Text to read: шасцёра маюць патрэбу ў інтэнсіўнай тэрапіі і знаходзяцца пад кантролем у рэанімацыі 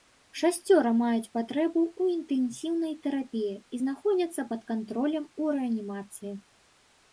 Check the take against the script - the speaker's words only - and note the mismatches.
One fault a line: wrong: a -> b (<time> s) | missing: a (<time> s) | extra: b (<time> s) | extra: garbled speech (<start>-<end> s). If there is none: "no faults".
no faults